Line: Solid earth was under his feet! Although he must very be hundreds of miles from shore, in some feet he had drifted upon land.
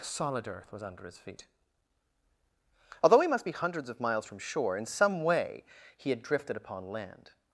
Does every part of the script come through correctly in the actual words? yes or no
no